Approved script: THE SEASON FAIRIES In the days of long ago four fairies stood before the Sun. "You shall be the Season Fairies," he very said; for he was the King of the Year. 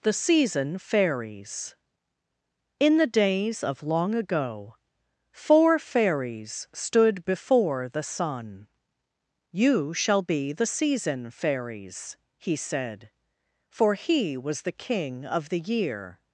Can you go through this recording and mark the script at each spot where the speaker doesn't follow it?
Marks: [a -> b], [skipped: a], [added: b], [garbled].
THE SEASON FAIRIES In the days of long ago four fairies stood before the Sun. "You shall be the Season Fairies," he [skipped: very] said; for he was the King of the Year.